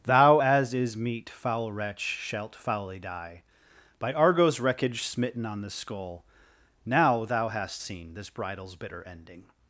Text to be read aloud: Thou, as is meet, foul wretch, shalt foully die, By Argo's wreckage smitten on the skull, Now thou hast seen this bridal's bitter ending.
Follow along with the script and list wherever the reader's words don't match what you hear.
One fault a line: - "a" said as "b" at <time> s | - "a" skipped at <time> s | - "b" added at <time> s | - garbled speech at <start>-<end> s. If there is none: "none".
none